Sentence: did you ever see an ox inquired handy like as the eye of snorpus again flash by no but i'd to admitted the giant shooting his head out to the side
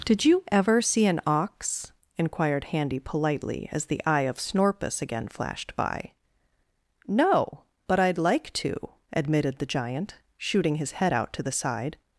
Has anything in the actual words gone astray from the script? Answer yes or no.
yes